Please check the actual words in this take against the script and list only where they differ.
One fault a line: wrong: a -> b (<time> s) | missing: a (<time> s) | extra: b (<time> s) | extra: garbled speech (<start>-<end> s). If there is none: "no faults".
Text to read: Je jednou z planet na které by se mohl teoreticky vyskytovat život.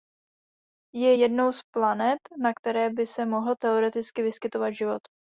no faults